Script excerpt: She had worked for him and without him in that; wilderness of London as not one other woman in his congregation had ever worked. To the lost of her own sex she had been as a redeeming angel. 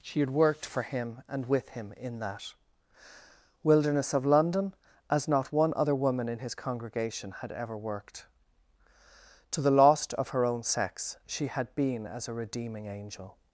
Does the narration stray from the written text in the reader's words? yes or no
yes